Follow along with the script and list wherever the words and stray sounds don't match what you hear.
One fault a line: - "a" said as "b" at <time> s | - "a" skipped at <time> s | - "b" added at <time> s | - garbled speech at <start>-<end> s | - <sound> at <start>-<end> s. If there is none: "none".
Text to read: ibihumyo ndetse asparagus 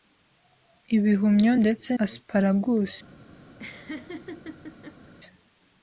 - laugh at 3.6-5.1 s